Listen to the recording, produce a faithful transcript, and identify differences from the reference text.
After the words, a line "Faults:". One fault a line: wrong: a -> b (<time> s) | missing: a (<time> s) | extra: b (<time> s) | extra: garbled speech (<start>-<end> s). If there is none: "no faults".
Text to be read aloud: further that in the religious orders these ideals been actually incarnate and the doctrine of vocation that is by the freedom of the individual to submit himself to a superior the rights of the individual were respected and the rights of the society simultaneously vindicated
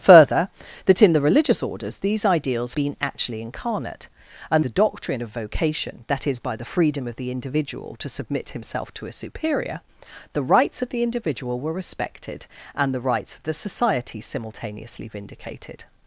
further that in the religious orders these ideals been actually incarnate and the doctrine of vocation that is by the freedom of the individual to submit himself to a superior the rights of the individual were respected and the rights of the society simultaneously vindicated
Faults:
no faults